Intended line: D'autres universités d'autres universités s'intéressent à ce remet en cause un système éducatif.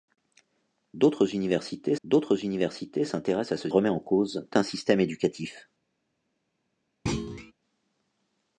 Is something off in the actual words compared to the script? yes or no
no